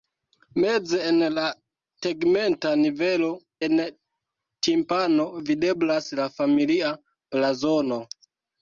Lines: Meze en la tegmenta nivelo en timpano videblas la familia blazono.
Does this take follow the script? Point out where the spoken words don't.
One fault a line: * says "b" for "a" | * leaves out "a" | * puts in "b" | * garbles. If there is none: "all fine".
all fine